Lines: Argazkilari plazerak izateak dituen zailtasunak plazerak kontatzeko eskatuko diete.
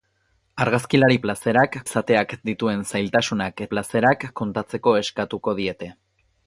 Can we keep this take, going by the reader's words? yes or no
yes